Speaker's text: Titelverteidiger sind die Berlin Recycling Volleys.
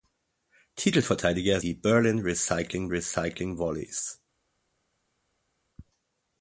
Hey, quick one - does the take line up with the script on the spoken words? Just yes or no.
no